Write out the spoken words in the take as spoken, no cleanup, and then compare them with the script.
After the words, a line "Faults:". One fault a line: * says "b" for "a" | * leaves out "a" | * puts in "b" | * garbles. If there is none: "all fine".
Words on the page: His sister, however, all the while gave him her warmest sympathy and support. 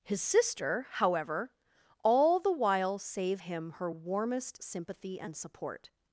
His sister, however, all the while save him her warmest sympathy and support.
Faults:
* says "save" for "gave"